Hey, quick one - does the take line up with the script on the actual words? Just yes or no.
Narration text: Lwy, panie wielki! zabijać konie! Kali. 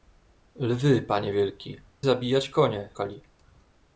yes